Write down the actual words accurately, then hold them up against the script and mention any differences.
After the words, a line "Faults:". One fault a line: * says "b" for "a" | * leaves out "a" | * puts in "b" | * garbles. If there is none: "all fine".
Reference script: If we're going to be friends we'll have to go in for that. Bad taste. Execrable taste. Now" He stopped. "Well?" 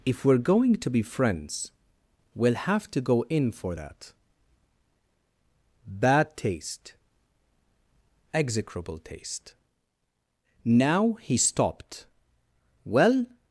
If we're going to be friends we'll have to go in for that. Bad taste. Execrable taste. Now" He stopped. "Well?"
Faults:
all fine